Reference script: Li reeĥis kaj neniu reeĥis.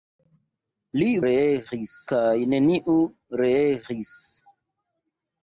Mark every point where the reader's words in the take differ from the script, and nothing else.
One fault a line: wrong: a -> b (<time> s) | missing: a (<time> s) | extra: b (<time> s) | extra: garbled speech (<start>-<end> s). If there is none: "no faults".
no faults